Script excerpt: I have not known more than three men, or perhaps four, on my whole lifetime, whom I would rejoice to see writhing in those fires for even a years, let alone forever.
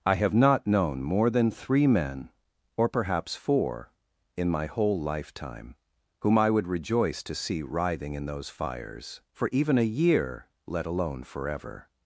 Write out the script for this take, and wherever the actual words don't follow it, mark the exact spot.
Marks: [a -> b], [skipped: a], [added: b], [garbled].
I have not known more than three men, or perhaps four, [on -> in] my whole lifetime, whom I would rejoice to see writhing in those fires for even a [years, -> year] let alone forever.